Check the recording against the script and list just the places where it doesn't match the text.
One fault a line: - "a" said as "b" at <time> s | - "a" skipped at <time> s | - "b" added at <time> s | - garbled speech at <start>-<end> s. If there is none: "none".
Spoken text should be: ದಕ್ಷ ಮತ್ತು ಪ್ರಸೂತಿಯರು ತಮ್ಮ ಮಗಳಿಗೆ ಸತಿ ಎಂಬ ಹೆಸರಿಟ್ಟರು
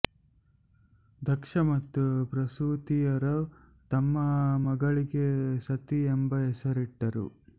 none